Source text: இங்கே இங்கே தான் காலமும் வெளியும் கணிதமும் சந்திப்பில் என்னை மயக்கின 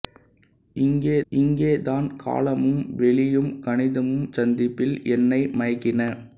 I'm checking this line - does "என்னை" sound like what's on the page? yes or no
yes